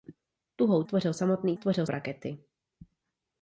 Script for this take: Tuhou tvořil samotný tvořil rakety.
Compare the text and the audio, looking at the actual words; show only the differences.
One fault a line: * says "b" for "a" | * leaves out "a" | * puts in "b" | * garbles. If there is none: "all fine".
all fine